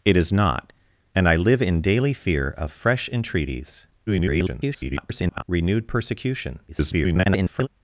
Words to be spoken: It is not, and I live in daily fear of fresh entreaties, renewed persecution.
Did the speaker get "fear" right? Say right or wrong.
right